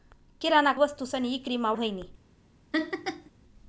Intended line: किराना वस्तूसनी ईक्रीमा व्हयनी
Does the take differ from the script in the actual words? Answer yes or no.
no